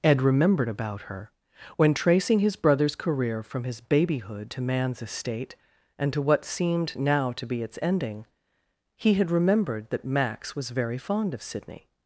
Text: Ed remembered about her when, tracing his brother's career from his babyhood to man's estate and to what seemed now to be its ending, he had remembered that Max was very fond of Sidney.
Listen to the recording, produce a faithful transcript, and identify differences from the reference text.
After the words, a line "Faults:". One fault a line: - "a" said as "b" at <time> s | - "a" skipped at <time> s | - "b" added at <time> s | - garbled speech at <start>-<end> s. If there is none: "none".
Ed remembered about her when, tracing his brother's career from his babyhood to man's estate and to what seemed now to be its ending, he had remembered that Max was very fond of Sidney.
Faults:
none